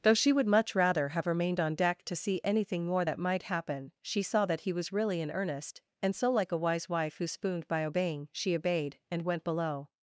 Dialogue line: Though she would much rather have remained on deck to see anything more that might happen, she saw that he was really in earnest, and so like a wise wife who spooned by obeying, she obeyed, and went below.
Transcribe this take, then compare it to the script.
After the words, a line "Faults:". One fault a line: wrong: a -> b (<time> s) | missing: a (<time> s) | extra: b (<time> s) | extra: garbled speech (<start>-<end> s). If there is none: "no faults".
Though she would much rather have remained on deck to see anything more that might happen, she saw that he was really in earnest, and so like a wise wife who spooned by obeying, she obeyed, and went below.
Faults:
no faults